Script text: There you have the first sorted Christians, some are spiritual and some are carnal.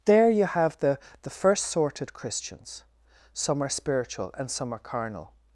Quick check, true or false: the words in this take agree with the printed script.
false